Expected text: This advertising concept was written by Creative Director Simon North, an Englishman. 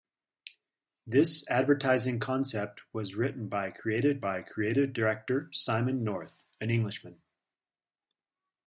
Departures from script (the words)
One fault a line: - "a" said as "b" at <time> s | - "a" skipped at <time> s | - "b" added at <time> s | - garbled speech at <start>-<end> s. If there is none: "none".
- "by Creative" added at 4.2 s